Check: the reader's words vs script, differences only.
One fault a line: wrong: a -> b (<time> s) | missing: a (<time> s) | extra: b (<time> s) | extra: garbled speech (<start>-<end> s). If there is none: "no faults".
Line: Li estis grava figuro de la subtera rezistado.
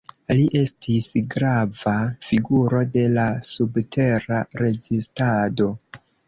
no faults